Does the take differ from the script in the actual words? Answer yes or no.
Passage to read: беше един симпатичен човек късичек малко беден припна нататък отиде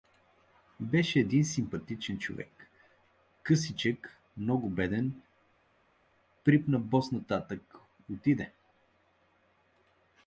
yes